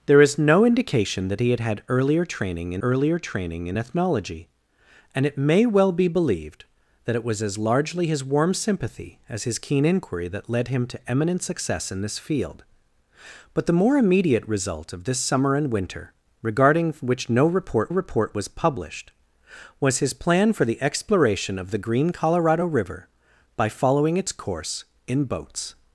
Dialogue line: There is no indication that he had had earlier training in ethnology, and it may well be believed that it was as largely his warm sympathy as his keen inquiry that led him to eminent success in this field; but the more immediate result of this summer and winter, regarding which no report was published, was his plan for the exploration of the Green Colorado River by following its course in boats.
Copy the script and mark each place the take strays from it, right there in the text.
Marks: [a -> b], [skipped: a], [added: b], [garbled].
There is no indication that he had had earlier training in [added: earlier training in] ethnology, and it may well be believed that it was as largely his warm sympathy as his keen inquiry that led him to eminent success in this field; but the more immediate result of this summer and winter, regarding which no report [added: report] was published, was his plan for the exploration of the Green Colorado River by following its course in boats.